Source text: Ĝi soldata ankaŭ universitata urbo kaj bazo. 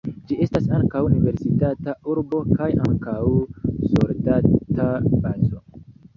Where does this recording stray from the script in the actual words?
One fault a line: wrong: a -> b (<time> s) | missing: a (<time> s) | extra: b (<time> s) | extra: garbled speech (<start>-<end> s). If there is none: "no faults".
wrong: soldata -> estas (0.4 s)
extra: ankaŭ soldata (2.9 s)